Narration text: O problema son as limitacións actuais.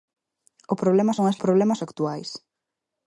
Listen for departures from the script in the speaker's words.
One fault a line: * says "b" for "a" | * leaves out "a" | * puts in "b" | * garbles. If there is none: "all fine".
* says "problema" for "limitacións"